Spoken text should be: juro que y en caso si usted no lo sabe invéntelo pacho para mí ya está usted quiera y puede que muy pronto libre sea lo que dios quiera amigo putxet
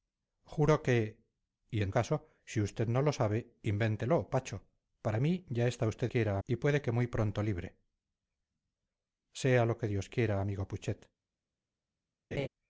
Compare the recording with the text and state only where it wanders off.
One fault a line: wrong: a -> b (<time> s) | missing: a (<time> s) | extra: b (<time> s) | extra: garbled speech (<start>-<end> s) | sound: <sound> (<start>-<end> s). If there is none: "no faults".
sound: laugh (12.3-12.5 s)